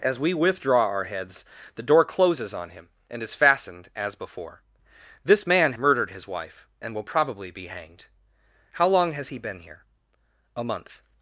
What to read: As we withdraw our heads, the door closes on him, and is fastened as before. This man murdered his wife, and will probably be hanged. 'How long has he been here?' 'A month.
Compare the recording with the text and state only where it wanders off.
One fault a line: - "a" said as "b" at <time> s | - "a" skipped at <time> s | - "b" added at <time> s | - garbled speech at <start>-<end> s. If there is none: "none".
none